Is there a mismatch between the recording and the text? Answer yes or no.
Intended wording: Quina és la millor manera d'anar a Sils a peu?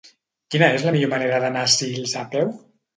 no